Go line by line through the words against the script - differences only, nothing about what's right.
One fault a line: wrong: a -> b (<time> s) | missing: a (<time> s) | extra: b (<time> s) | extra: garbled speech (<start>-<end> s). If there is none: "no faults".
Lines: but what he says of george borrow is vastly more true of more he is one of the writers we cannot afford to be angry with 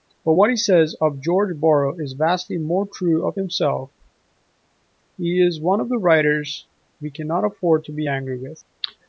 wrong: more -> himself (3.3 s)